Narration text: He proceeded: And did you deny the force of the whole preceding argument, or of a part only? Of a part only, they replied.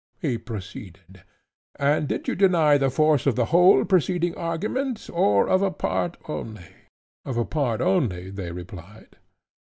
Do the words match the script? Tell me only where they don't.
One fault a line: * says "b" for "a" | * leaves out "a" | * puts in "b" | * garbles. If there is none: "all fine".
all fine